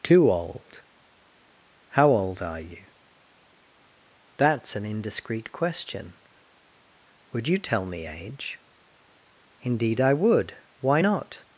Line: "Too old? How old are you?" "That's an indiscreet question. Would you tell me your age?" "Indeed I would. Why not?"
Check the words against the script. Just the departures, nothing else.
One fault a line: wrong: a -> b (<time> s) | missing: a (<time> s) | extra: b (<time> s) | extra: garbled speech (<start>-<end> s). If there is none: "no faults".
missing: your (8.1 s)